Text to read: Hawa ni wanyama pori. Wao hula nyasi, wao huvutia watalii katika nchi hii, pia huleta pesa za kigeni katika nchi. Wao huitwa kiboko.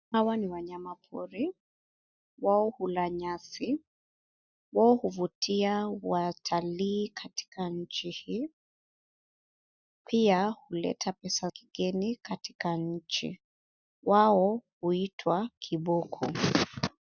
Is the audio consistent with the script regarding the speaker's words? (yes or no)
no